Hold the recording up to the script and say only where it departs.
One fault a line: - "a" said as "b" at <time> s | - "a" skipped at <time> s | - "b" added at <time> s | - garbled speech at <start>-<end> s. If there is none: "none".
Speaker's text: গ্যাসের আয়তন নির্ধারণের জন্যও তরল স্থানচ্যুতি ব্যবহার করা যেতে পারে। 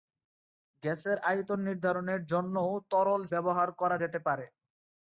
- "স্থানচ্যুতি" skipped at 3.2 s